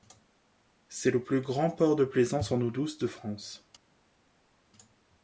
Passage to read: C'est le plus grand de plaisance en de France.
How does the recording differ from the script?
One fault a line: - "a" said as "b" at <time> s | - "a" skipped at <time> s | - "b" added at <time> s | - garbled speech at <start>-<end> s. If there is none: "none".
- "port" added at 1.7 s
- "eau douce" added at 2.6 s